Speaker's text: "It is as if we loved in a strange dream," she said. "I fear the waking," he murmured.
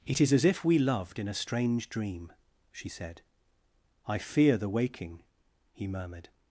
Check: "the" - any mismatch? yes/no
no